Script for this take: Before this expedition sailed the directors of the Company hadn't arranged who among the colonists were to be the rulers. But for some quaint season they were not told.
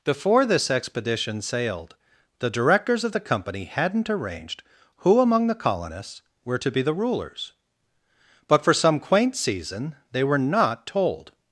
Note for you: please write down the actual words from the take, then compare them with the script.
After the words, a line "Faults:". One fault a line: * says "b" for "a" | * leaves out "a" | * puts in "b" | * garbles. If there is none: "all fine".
Before this expedition sailed the directors of the Company hadn't arranged who among the colonists were to be the rulers. But for some quaint season they were not told.
Faults:
all fine